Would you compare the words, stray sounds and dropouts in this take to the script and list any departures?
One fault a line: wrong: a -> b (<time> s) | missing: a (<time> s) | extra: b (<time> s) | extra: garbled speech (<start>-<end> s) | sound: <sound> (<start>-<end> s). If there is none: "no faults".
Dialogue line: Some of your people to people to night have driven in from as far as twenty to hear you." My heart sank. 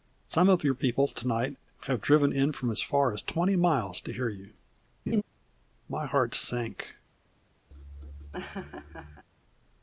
missing: people to (1.3 s)
extra: miles (3.5 s)
sound: laugh (5.1-5.2 s)
sound: laugh (7.7-9.2 s)